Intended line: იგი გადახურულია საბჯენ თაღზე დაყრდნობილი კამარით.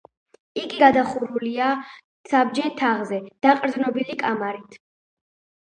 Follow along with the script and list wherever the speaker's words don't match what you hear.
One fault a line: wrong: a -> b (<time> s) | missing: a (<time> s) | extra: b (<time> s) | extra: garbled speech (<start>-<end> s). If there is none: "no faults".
no faults